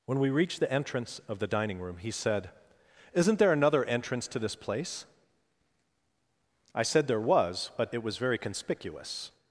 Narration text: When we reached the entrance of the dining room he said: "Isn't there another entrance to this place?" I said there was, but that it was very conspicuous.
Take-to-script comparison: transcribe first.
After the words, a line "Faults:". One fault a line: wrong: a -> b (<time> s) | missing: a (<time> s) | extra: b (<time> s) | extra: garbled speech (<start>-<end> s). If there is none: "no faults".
When we reached the entrance of the dining room he said: "Isn't there another entrance to this place?" I said there was, but it was very conspicuous.
Faults:
missing: that (7.9 s)